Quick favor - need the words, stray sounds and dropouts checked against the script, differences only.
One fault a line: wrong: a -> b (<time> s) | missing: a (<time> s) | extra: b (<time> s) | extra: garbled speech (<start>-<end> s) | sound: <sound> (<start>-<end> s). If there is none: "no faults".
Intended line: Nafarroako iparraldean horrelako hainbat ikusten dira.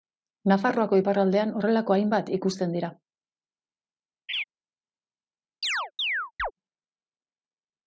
sound: laugh (4.3-4.4 s)
sound: chirp (5.6-6.5 s)